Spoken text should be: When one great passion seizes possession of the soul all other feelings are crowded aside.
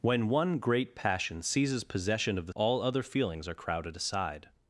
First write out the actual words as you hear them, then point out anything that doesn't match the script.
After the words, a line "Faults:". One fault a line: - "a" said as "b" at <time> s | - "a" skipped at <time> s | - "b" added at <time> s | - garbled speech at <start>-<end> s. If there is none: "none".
When one great passion seizes possession of the all other feelings are crowded aside.
Faults:
- "soul" skipped at 2.5 s